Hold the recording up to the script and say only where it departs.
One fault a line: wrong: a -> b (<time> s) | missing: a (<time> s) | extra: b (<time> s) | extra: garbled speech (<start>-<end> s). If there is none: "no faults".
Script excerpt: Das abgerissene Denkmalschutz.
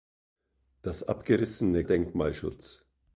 no faults